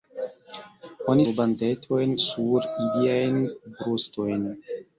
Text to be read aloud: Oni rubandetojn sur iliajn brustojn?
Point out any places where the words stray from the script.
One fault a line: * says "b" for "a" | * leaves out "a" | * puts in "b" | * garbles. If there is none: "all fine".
all fine